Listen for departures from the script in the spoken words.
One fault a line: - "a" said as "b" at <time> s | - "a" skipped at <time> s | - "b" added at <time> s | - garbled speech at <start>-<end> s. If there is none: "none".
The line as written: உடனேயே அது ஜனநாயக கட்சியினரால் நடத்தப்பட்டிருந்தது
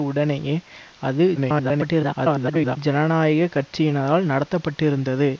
- garbled speech at 1.4-2.8 s